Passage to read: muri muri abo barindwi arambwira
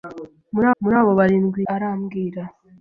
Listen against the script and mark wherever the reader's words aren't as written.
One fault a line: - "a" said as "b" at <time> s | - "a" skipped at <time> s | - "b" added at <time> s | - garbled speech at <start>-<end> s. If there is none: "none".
none